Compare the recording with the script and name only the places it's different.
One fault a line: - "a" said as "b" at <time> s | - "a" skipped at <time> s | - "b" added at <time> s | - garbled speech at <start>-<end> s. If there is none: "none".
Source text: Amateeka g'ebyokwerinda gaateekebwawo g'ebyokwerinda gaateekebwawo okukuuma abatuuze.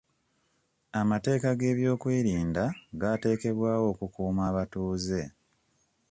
- "g'ebyokwerinda gaateekebwawo" skipped at 3.9 s